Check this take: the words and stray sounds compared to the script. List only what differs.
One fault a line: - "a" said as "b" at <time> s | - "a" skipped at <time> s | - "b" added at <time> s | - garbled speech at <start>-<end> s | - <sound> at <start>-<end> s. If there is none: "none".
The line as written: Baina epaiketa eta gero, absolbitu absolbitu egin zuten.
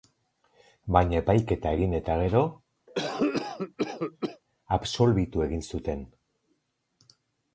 - "egin" added at 1.8 s
- cough at 2.9-4.4 s
- "absolbitu" skipped at 5.5 s